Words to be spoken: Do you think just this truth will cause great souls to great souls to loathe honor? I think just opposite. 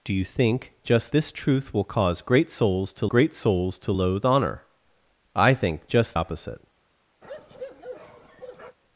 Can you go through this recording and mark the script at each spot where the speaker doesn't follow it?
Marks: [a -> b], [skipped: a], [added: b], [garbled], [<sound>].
Do you think just this truth will cause great souls to great souls to loathe honor? I think just opposite. [bark]